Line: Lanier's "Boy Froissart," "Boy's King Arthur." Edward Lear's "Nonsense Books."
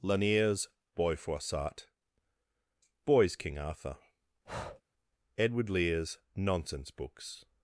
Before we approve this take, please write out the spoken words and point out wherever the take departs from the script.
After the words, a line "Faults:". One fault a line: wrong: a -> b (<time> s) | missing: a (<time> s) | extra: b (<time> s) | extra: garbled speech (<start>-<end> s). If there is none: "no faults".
Lanier's "Boy Froissart," "Boy's King Arthur." Edward Lear's "Nonsense Books."
Faults:
no faults